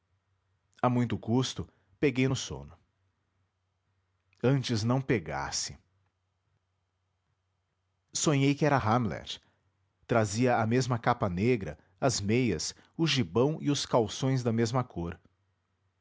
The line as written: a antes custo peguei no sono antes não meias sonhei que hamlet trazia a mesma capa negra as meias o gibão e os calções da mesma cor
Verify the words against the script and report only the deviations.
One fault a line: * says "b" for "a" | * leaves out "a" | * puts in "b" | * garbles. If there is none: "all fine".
* says "muito" for "antes"
* says "pegasse" for "meias"
* puts in "era"